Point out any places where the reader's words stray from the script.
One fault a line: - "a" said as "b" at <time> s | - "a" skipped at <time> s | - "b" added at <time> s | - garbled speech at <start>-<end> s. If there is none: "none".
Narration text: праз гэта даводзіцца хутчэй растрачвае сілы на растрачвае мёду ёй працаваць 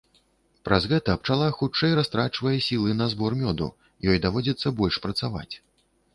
- "даводзіцца" said as "пчала" at 1.2 s
- "растрачвае" said as "збор" at 3.1 s
- "даводзіцца больш" added at 4.3 s